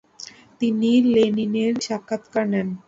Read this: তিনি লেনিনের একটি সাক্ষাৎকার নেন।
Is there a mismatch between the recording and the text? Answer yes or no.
yes